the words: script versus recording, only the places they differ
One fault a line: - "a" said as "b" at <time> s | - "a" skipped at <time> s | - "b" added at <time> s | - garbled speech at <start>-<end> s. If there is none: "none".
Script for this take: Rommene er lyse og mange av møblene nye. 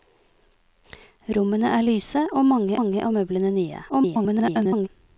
- "mange" added at 2.8 s
- garbled speech at 3.9-4.9 s